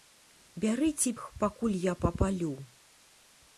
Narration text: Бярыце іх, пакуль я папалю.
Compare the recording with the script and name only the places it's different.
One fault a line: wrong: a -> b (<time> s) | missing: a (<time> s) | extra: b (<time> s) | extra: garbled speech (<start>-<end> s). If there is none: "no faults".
no faults